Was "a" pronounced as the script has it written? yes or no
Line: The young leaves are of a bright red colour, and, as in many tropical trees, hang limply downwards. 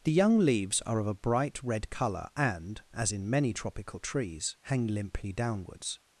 yes